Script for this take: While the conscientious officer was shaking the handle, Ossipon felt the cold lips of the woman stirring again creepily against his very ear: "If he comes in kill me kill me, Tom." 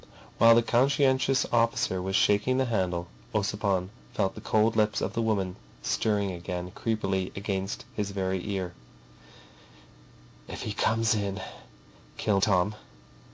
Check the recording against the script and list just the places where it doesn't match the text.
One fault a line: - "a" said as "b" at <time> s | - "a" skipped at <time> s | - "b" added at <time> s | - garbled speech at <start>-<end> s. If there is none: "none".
- "me kill me" skipped at 12.4 s